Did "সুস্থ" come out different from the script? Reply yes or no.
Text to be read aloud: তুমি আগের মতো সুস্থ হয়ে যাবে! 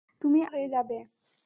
yes